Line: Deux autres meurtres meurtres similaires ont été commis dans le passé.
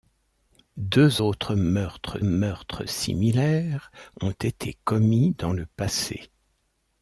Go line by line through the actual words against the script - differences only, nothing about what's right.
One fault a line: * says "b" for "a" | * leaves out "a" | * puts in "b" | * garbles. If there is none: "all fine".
all fine